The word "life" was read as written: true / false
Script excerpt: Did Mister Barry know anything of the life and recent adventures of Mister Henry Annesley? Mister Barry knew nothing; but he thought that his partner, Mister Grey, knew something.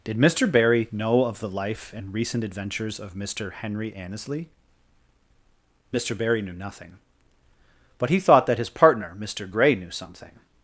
true